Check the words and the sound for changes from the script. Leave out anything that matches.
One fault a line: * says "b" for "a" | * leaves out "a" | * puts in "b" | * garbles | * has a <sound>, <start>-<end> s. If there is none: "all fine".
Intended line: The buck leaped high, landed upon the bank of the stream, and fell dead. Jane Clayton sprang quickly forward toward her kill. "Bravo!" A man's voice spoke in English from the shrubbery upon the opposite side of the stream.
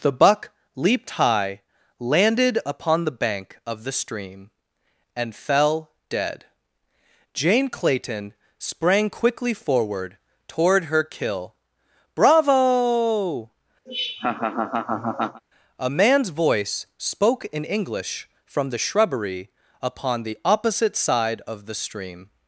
* has a laugh, 13.9-15.4 s